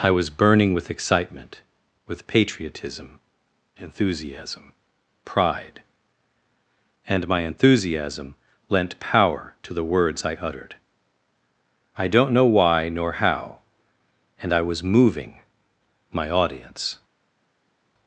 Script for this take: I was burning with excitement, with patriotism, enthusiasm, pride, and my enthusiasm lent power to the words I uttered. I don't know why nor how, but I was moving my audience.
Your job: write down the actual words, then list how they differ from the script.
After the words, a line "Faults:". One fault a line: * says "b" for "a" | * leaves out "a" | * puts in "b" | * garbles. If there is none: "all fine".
I was burning with excitement, with patriotism, enthusiasm, pride, and my enthusiasm lent power to the words I uttered. I don't know why nor how, and I was moving my audience.
Faults:
* says "and" for "but"